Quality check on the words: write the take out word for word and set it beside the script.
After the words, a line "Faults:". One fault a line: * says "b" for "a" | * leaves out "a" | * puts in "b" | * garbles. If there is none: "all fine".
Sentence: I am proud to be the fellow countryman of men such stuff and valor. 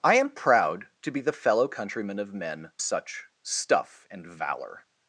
I am proud to be the fellow countryman of men such stuff and valor.
Faults:
all fine